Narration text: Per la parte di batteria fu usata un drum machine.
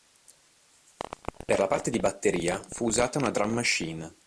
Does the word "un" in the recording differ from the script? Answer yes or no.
yes